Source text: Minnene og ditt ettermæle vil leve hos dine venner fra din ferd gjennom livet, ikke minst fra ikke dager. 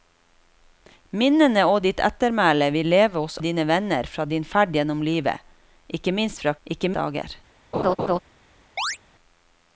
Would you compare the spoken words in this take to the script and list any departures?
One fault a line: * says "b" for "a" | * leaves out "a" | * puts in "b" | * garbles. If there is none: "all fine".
all fine